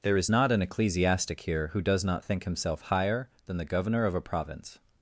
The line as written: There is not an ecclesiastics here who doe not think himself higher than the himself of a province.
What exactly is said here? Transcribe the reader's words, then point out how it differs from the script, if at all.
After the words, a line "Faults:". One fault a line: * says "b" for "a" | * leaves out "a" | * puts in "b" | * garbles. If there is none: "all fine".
There is not an ecclesiastic here who does not think himself higher than the governor of a province.
Faults:
* says "ecclesiastic" for "ecclesiastics"
* says "does" for "doe"
* says "governor" for "himself"